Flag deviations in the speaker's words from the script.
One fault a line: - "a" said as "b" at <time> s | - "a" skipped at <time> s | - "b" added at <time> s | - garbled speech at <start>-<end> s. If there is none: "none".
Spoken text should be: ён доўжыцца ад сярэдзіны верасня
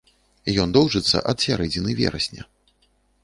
none